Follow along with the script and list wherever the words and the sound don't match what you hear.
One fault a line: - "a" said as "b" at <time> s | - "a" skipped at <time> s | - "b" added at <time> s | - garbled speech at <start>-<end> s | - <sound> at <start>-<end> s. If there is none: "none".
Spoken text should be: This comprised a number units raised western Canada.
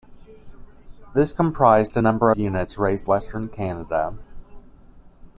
none